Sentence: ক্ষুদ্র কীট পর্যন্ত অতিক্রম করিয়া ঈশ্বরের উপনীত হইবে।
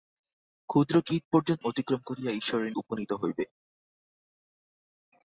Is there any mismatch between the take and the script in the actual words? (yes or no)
no